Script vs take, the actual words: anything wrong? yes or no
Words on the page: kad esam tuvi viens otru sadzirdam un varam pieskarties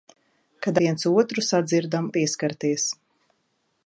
yes